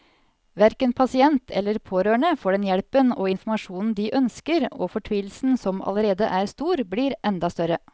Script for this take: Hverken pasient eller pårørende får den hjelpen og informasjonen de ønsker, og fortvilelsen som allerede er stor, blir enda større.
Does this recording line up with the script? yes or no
yes